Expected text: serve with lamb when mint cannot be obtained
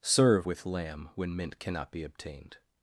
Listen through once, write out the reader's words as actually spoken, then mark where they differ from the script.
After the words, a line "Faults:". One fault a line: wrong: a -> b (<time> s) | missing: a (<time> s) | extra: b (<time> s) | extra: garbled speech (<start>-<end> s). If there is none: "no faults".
serve with lamb when mint cannot be obtained
Faults:
no faults